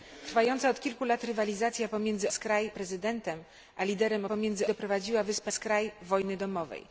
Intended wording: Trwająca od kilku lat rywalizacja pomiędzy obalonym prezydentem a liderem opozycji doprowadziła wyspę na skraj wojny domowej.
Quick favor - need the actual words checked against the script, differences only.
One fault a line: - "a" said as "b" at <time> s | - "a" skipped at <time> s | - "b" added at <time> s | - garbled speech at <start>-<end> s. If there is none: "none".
- "obalonym" said as "skraj" at 2.3 s
- "opozycji" said as "pomiędzy" at 4.2 s
- "na" skipped at 5.5 s